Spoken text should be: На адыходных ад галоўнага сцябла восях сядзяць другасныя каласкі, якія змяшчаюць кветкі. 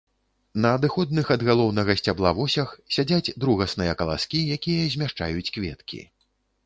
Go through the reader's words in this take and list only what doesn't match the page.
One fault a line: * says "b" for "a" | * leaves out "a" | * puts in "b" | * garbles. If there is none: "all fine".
all fine